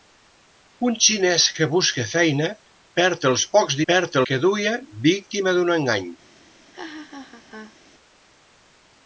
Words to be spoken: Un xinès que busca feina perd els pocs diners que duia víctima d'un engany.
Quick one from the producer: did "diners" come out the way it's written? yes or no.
no